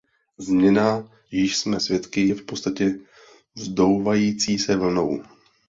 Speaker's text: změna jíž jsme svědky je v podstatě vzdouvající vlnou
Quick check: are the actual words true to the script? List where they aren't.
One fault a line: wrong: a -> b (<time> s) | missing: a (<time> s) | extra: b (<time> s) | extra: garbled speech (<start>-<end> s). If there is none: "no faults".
extra: se (4.6 s)